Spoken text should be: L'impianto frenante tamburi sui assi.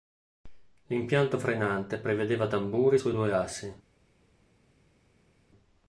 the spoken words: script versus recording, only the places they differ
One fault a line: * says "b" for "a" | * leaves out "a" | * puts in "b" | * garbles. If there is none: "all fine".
* puts in "prevedeva"
* puts in "due"